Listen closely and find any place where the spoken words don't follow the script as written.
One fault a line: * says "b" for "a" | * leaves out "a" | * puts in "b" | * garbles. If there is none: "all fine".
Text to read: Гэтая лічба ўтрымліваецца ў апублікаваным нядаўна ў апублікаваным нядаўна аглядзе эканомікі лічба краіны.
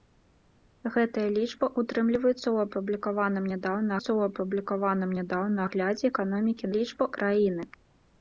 all fine